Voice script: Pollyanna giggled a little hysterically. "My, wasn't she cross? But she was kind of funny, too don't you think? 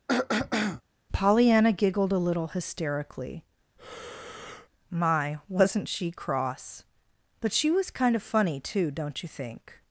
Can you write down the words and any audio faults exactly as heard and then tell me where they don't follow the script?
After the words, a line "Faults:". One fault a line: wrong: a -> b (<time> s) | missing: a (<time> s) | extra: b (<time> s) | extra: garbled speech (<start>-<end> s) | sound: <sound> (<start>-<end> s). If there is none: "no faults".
Pollyanna giggled a little hysterically. "My, wasn't she cross? But she was kind of funny, too don't you think?
Faults:
sound: throat clearing (0.1-0.8 s)
sound: breath (3.8-4.7 s)